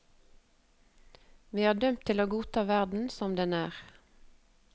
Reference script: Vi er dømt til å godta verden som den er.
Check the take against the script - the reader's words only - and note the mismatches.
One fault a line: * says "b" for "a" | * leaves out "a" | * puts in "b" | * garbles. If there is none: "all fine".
all fine